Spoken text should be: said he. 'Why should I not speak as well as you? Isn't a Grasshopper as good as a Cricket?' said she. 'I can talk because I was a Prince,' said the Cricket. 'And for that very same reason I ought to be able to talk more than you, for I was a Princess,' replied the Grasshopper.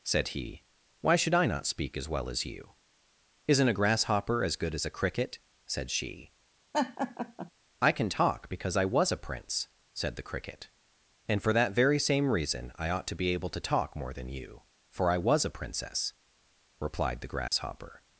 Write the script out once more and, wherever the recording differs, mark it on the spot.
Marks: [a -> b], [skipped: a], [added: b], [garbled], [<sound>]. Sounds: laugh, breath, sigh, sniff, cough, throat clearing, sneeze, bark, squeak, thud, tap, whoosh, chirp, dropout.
said he. 'Why should I not speak as well as you? Isn't a Grasshopper as good as a Cricket?' said she. [laugh] 'I can talk because I was a Prince,' said the Cricket. 'And for that very same reason I ought to be able to talk more than you, for I was a Princess,' replied the Grasshopper. [dropout]